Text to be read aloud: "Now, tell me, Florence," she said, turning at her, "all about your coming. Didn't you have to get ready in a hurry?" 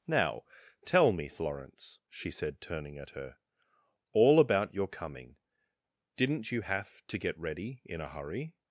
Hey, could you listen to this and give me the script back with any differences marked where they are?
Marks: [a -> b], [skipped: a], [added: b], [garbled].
"Now, tell me, Florence," she said, turning at her, "all about your coming. Didn't you have to get ready in a hurry?"